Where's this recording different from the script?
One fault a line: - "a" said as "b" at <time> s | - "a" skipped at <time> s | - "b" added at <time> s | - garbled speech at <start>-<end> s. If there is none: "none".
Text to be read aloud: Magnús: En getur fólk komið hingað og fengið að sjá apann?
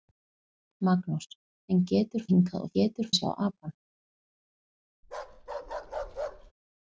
- "fólk komið" skipped at 2.2 s
- "fengið" said as "getur" at 2.8 s